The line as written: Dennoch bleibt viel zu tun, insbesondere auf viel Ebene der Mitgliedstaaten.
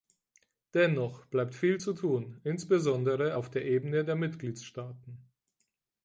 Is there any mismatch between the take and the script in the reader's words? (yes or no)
yes